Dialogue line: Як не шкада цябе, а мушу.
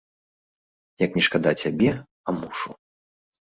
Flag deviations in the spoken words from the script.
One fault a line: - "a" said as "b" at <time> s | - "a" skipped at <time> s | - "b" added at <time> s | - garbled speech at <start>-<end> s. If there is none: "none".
none